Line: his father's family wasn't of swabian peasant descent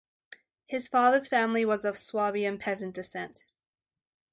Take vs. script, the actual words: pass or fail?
fail